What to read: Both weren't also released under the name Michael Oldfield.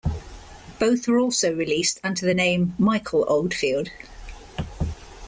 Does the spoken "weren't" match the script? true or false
false